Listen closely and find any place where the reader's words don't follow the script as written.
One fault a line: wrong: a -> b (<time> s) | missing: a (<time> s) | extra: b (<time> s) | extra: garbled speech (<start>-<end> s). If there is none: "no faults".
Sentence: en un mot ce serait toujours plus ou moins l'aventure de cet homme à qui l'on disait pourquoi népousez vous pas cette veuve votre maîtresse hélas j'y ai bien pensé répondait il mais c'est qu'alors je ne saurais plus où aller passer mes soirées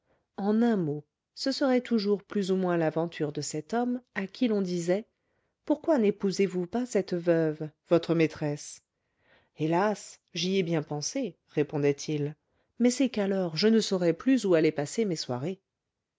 no faults